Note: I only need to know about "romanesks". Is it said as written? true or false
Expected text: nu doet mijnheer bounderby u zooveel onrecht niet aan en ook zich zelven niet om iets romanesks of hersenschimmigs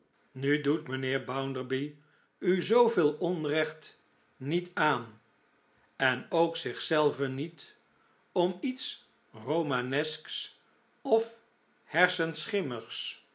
true